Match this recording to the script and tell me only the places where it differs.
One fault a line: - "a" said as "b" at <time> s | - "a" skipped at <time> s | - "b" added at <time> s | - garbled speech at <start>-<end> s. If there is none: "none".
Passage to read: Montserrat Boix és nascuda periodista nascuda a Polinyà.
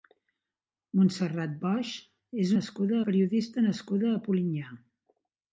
none